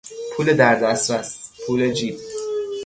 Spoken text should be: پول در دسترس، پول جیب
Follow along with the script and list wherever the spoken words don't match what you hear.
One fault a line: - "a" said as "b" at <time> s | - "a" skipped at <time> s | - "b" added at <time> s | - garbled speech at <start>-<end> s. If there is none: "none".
none